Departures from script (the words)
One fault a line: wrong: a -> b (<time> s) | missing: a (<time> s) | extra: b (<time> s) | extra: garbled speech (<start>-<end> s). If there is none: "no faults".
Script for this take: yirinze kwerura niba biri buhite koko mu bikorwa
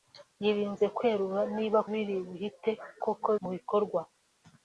no faults